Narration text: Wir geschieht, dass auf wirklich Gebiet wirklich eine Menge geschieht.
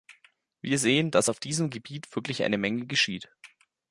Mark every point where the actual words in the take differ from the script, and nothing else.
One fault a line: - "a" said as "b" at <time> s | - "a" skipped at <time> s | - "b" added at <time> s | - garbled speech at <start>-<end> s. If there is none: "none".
- "geschieht" said as "sehen" at 0.8 s
- "wirklich" said as "diesem" at 1.4 s